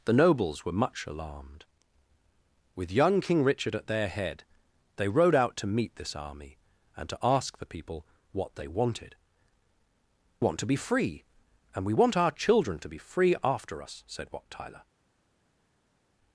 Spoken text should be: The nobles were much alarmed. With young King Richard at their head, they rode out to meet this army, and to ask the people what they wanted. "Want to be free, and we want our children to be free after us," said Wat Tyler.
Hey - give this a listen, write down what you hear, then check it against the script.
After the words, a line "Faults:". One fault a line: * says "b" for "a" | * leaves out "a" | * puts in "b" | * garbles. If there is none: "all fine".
The nobles were much alarmed. With young King Richard at their head, they rode out to meet this army, and to ask the people what they wanted. "Want to be free, and we want our children to be free after us," said Wat Tyler.
Faults:
all fine